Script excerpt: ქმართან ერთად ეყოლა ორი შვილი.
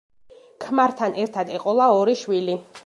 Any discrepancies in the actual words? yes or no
no